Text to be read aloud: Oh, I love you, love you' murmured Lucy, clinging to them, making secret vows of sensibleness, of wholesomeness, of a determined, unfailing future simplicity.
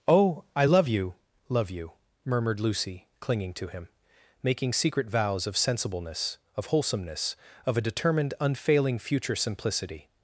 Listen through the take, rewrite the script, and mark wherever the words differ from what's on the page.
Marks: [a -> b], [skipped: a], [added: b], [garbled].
Oh, I love you, love you' murmured Lucy, clinging to [them, -> him] making secret vows of sensibleness, of wholesomeness, of a determined, unfailing future simplicity.